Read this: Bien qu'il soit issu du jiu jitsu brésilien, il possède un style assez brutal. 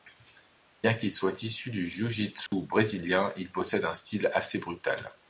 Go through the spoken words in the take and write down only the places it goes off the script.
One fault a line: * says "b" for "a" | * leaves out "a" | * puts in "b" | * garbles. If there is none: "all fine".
all fine